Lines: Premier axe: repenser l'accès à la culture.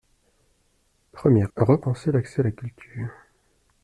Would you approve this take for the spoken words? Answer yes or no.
no